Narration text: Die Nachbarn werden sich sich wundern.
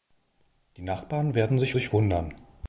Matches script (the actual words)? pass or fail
pass